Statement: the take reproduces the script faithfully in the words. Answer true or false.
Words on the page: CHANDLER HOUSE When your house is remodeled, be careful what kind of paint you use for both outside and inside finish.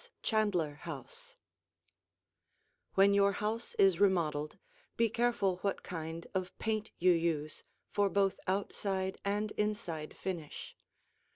true